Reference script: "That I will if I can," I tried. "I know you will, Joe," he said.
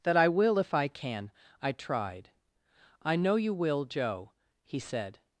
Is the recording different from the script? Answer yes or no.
no